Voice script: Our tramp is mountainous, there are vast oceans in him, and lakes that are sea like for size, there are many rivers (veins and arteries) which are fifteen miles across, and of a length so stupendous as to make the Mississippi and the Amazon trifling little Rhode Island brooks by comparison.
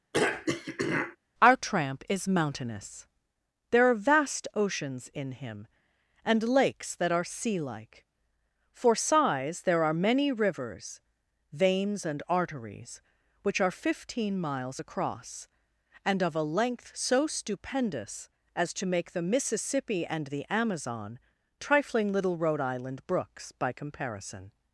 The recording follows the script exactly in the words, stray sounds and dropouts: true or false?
false